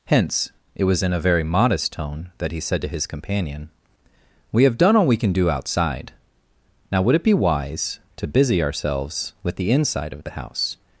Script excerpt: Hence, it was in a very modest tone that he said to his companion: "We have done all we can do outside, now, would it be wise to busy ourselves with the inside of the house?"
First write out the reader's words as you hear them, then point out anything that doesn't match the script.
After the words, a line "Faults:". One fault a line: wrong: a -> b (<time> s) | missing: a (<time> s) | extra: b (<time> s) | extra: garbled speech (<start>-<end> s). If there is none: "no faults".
Hence, it was in a very modest tone that he said to his companion: "We have done all we can do outside, now, would it be wise to busy ourselves with the inside of the house?"
Faults:
no faults